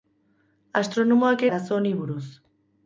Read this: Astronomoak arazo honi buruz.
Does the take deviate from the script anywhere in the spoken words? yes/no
no